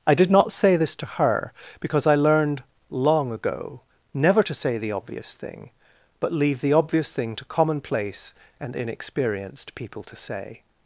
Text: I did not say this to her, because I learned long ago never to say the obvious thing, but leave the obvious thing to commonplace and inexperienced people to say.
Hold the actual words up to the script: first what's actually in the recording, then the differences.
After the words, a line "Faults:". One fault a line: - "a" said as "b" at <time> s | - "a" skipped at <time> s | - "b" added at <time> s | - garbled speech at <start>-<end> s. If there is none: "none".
I did not say this to her, because I learned long ago never to say the obvious thing, but leave the obvious thing to commonplace and inexperienced people to say.
Faults:
none